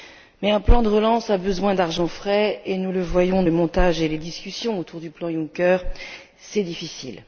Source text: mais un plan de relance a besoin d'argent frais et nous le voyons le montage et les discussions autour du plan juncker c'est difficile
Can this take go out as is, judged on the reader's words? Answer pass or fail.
pass